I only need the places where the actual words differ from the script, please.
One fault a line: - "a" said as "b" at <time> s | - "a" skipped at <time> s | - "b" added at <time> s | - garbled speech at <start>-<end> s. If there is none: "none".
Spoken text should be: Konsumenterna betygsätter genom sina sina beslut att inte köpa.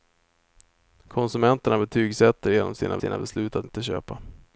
none